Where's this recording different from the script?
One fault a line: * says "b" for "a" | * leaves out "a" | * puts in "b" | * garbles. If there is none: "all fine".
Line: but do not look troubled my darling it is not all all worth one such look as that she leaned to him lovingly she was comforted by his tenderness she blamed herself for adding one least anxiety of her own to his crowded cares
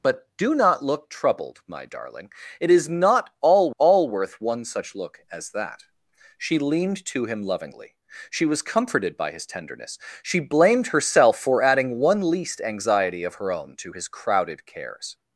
all fine